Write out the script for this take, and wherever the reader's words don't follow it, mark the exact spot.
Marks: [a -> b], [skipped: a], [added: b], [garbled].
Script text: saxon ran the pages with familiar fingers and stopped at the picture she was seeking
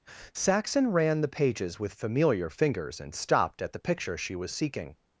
saxon ran the pages with familiar fingers and stopped at the picture she was seeking